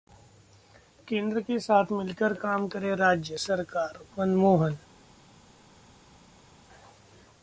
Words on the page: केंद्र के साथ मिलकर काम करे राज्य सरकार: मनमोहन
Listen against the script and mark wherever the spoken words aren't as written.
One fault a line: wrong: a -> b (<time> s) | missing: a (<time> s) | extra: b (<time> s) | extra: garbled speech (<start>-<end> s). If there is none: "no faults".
no faults